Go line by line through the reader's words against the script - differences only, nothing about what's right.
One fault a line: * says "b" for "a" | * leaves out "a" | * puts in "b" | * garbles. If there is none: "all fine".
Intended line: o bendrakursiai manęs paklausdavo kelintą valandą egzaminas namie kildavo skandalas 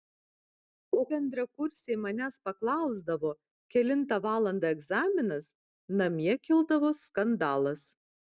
all fine